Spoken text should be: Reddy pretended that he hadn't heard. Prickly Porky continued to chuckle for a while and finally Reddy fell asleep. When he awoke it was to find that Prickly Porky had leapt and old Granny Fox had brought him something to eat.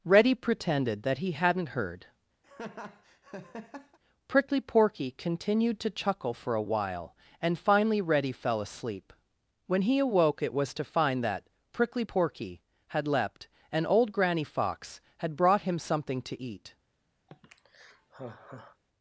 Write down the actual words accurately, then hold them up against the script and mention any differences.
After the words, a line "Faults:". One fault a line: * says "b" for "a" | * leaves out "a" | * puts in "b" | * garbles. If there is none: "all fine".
Reddy pretended that he hadn't heard. Prickly Porky continued to chuckle for a while and finally Reddy fell asleep. When he awoke it was to find that Prickly Porky had leapt and old Granny Fox had brought him something to eat.
Faults:
all fine